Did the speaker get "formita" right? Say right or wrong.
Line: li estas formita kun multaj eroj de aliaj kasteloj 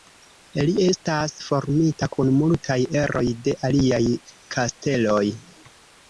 right